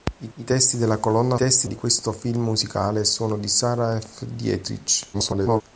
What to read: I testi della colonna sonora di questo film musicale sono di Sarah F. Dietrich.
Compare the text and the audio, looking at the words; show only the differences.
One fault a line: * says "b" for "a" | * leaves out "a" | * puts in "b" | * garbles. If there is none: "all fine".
* puts in "I"
* says "testi" for "sonora"
* garbles